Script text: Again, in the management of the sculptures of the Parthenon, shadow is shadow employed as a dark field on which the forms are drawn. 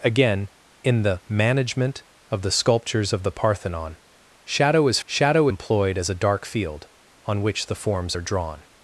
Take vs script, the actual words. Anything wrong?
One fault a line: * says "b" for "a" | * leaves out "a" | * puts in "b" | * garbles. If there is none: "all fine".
all fine